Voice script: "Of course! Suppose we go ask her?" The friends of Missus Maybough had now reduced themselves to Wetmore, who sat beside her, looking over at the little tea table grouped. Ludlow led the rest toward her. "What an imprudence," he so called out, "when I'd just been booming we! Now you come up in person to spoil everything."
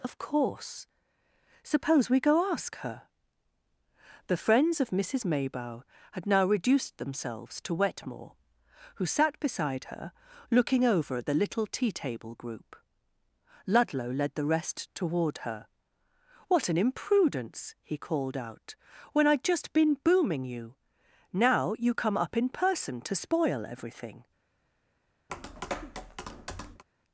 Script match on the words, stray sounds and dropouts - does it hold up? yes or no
no